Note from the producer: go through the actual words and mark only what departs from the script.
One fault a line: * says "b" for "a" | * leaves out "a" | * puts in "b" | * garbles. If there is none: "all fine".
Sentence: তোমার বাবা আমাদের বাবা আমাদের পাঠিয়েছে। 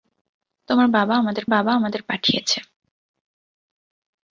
all fine